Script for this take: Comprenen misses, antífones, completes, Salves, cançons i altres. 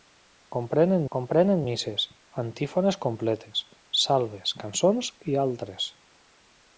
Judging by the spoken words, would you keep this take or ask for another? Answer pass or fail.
fail